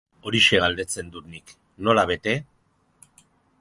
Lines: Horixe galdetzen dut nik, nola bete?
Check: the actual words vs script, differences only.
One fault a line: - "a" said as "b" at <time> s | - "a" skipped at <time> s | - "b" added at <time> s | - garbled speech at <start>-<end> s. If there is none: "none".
none